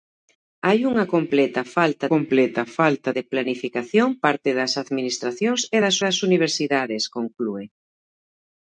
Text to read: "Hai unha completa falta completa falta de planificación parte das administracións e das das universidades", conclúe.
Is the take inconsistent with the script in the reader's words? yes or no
no